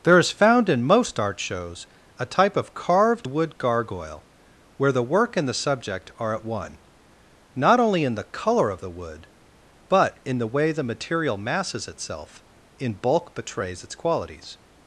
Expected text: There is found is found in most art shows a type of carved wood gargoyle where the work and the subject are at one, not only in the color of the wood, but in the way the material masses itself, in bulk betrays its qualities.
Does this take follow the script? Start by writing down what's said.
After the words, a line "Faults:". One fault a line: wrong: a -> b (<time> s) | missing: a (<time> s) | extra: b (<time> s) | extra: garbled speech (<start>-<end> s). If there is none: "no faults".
There is found in most art shows a type of carved wood gargoyle where the work and the subject are at one, not only in the color of the wood, but in the way the material masses itself, in bulk betrays its qualities.
Faults:
missing: is found (0.7 s)